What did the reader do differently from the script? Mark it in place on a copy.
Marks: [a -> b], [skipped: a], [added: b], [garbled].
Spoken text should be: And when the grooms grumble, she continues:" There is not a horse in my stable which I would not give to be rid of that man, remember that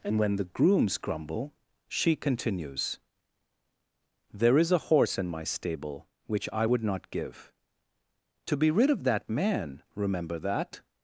And when the grooms grumble, she continues:" There is [skipped: not] a horse in my stable which I would not give to be rid of that man, remember that